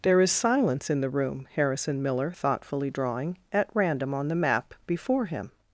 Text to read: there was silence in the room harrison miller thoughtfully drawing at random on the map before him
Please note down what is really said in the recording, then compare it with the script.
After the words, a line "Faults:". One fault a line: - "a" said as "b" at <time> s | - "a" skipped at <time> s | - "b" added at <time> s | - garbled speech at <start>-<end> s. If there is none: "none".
there is silence in the room harrison miller thoughtfully drawing at random on the map before him
Faults:
- "was" said as "is" at 0.2 s